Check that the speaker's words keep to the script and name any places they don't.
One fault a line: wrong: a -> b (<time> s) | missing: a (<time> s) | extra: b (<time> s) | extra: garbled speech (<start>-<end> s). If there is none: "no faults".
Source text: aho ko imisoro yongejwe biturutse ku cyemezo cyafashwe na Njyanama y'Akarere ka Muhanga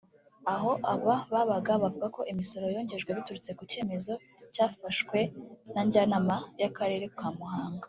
extra: aba babaga bavuga (0.9 s)